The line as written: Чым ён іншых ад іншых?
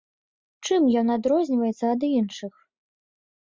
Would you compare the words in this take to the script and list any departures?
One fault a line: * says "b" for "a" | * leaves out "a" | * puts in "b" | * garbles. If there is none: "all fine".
* says "адрозніваецца" for "іншых"